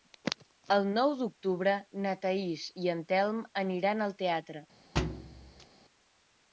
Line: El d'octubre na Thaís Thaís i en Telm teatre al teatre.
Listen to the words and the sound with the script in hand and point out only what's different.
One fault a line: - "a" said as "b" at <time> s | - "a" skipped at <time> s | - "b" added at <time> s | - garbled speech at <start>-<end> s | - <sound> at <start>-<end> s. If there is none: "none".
- "nou" added at 0.9 s
- "Thaís" skipped at 2.6 s
- "teatre" said as "aniran" at 3.6 s
- thud at 5.0-5.7 s